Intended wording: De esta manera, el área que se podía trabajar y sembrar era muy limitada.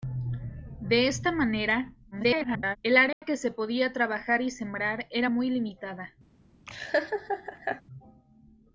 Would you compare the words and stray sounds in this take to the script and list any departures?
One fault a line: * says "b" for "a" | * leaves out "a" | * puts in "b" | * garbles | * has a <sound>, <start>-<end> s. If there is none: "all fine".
* garbles
* has a dropout, 3.1-3.2 s
* has a laugh, 6.7-7.8 s